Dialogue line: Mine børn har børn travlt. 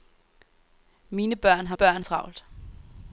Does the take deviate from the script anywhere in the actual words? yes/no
no